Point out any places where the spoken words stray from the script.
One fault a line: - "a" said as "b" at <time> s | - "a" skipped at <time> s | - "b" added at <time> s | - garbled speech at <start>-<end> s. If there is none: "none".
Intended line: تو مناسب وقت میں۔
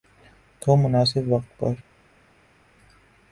- "میں" said as "پر" at 1.6 s